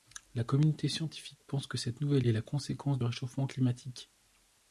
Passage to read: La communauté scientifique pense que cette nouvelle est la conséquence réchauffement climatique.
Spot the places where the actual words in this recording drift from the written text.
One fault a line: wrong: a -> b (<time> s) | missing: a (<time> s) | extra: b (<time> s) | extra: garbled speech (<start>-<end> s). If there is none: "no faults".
no faults